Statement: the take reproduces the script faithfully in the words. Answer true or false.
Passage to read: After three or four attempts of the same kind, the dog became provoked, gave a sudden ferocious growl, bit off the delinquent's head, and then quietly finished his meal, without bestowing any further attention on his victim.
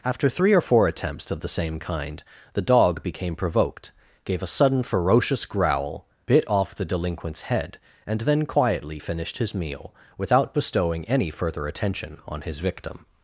true